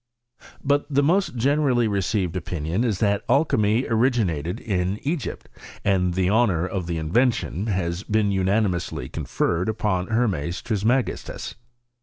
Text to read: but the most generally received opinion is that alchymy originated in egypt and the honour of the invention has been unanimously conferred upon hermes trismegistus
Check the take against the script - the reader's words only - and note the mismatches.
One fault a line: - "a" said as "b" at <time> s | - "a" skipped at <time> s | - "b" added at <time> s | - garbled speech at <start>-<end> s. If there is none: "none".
none